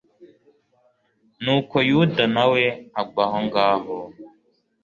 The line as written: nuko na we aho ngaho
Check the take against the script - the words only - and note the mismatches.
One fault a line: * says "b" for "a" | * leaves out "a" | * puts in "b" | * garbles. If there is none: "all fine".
* puts in "yuda"
* puts in "agwa"